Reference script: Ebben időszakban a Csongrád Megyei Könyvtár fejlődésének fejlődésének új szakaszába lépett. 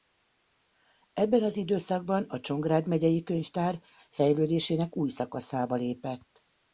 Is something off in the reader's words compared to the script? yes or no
yes